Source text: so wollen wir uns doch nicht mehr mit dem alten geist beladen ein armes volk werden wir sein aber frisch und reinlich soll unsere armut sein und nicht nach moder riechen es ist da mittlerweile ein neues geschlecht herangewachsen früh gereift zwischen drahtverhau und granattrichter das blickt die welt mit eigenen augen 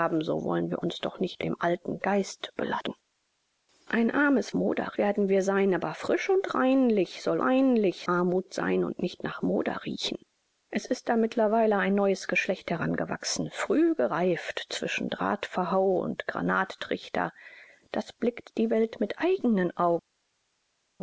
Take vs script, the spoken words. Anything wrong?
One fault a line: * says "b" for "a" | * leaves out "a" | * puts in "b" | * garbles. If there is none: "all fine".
* leaves out "mehr mit"
* says "moder" for "volk"
* says "reinlich" for "unsere"